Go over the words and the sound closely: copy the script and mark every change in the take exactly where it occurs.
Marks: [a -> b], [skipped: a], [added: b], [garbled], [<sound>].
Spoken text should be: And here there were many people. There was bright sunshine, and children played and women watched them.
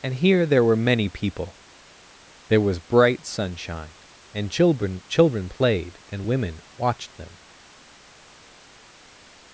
And here there were many people. There was bright sunshine, and children [added: children] played and women watched them.